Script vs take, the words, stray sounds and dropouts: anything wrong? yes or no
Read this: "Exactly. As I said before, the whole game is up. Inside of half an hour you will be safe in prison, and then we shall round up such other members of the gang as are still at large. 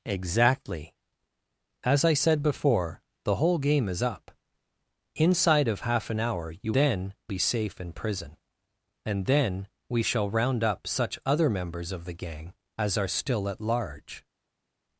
yes